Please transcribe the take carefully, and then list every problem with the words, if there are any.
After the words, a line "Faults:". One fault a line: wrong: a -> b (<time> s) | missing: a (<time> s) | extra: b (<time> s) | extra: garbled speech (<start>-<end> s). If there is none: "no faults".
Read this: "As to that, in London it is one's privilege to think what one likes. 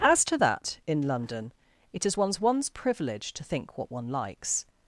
"As to that, in London it is one's one's privilege to think what one likes.
Faults:
extra: one's (2.4 s)